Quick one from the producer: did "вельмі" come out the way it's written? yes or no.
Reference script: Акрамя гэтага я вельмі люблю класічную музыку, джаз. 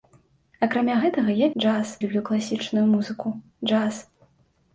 no